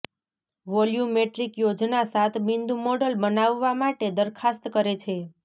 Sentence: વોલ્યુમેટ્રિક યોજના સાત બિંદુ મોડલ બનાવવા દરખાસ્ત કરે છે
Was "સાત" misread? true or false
false